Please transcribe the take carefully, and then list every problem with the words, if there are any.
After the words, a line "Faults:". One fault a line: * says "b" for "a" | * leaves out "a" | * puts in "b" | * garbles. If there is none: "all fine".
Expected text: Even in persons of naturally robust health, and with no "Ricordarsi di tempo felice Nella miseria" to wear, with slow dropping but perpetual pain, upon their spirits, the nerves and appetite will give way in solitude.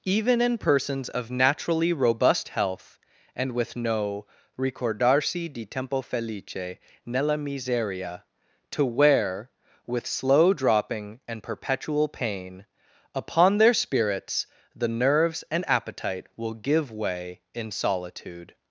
Even in persons of naturally robust health, and with no "Ricordarsi di tempo felice Nella miseria" to wear, with slow dropping and perpetual pain, upon their spirits, the nerves and appetite will give way in solitude.
Faults:
* says "and" for "but"